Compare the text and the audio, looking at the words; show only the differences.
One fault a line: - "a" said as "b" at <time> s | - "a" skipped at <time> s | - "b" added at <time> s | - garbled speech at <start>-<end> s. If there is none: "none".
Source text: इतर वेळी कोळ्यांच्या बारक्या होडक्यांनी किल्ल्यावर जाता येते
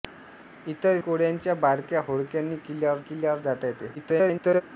- "वेळी" skipped at 1.0 s
- "किल्ल्यावर" added at 3.0 s
- garbled speech at 3.9-4.6 s